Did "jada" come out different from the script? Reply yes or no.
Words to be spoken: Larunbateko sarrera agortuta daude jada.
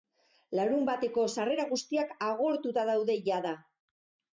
no